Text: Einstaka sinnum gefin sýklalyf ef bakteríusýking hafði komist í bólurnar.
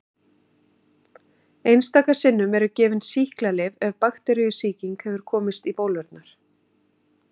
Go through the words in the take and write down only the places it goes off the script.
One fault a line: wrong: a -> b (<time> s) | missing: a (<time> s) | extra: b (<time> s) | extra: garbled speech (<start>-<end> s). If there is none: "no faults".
extra: eru (2.6 s)
wrong: hafði -> hefur (5.0 s)